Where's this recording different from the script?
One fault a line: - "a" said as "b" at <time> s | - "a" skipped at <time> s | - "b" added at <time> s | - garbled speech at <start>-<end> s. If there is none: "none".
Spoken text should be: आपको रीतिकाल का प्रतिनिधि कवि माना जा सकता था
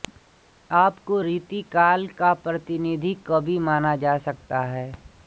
- "था" said as "है" at 4.6 s